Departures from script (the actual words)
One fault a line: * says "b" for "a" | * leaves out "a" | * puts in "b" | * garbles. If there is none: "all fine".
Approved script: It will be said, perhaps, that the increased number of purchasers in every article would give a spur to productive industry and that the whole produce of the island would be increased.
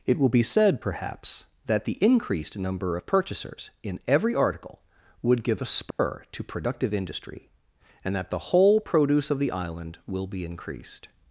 * says "will" for "would"